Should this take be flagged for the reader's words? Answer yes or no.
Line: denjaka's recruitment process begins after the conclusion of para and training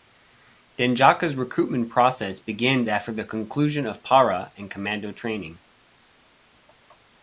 yes